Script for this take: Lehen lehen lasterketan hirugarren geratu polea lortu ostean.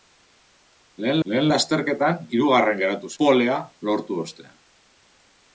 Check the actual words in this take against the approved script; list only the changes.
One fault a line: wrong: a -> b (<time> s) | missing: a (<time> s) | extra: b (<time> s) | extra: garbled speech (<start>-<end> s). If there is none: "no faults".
no faults